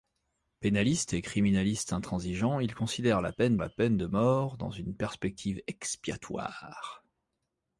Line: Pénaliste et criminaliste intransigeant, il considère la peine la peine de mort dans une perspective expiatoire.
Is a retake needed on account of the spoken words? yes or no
no